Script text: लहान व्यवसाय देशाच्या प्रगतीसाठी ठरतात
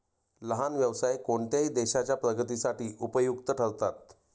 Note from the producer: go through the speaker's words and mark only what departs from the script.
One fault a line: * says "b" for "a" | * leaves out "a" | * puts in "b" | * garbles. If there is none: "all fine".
* puts in "कोणत्याही"
* puts in "उपयुक्त"